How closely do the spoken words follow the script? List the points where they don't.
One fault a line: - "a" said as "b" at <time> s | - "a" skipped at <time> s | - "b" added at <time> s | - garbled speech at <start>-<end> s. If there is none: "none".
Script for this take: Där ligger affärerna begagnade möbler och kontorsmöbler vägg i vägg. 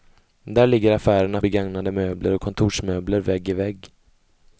none